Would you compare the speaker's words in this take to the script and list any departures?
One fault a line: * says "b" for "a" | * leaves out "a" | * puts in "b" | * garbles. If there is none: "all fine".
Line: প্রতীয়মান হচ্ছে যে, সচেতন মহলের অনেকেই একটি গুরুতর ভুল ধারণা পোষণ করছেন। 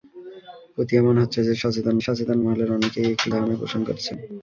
* puts in "সচেতন"
* leaves out "গুরুতর ভুল"